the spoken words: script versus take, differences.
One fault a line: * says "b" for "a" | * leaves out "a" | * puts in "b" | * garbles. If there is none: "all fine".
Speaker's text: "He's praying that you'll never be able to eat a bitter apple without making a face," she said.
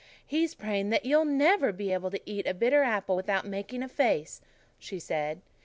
all fine